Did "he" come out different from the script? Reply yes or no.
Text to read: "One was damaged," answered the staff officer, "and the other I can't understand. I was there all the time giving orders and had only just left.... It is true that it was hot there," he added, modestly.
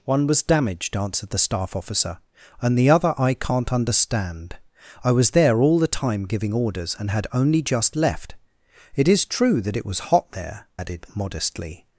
yes